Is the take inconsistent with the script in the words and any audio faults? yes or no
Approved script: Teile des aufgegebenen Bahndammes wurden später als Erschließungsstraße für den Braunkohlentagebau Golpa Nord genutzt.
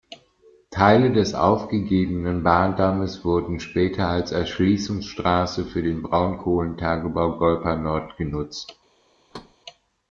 yes